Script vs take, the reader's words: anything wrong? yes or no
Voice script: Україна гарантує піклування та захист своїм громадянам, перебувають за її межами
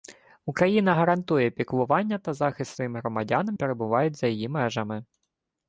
no